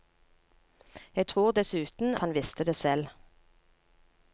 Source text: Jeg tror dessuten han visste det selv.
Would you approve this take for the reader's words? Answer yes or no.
yes